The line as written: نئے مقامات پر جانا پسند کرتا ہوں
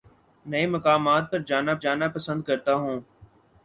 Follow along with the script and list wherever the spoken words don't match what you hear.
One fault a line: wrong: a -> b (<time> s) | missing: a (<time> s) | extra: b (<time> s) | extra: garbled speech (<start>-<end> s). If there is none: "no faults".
extra: جانا (1.8 s)